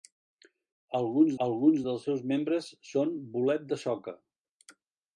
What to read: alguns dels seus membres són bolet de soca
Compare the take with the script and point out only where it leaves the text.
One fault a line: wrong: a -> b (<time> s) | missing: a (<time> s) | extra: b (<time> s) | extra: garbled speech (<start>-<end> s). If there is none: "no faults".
extra: alguns (1.5 s)